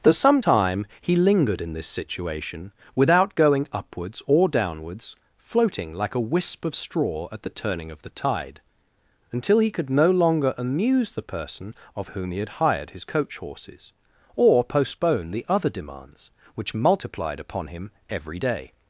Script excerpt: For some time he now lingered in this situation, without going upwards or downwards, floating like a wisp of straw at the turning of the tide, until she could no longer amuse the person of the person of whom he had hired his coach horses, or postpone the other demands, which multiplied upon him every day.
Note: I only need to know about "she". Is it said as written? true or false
false